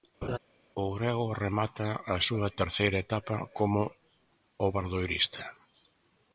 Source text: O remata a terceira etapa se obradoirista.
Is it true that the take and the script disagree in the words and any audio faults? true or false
true